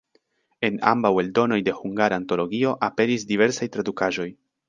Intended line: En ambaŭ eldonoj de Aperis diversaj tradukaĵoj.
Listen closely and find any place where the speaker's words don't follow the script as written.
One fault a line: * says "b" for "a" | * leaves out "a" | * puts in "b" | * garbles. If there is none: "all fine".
* puts in "Hungara Antologio"